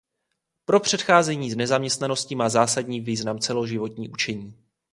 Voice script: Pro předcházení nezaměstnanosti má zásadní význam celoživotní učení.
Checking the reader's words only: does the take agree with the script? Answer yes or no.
yes